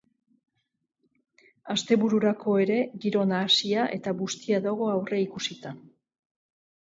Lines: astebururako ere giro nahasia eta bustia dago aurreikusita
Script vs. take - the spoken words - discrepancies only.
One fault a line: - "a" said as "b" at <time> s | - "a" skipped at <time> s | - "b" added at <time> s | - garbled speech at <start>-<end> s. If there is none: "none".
none